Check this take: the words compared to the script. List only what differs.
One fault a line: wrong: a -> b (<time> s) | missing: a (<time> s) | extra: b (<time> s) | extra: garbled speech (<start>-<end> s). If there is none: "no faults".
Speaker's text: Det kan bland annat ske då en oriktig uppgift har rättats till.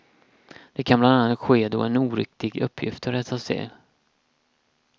no faults